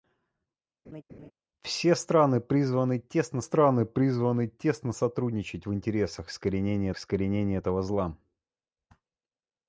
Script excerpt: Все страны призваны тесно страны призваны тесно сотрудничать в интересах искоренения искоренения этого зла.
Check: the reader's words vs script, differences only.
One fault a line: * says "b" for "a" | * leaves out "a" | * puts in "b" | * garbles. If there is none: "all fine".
all fine